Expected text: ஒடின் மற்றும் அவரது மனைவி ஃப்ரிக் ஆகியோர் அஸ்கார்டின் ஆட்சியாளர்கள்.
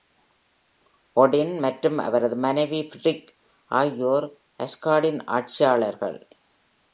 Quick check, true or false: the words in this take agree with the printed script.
true